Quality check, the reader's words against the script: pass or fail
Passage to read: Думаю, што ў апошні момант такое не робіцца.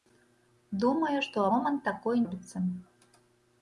fail